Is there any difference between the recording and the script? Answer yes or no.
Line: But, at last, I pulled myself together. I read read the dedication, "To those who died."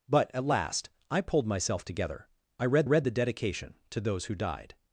no